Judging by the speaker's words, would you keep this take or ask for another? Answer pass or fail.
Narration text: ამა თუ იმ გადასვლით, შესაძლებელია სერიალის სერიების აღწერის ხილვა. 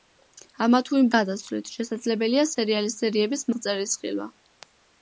pass